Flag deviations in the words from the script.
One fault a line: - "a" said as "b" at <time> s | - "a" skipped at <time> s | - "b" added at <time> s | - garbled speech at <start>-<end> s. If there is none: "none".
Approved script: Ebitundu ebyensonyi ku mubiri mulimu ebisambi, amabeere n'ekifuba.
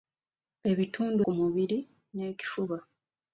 - "ebyensonyi" skipped at 1.2 s
- "mulimu ebisambi amabeere" skipped at 1.8 s